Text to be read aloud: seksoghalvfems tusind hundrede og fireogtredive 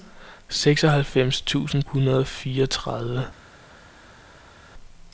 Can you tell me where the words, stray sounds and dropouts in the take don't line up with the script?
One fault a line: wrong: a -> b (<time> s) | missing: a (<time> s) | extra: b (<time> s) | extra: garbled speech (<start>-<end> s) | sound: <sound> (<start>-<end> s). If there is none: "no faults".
no faults